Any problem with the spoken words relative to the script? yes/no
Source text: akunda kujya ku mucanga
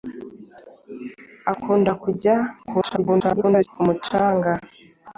yes